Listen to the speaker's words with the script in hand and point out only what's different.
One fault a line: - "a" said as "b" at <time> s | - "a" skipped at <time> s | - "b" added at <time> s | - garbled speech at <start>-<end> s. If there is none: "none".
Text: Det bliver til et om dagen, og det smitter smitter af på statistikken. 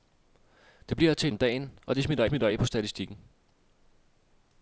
none